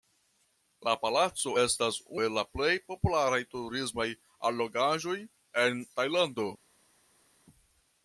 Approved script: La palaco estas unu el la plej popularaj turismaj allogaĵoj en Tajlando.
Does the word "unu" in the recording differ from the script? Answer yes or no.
yes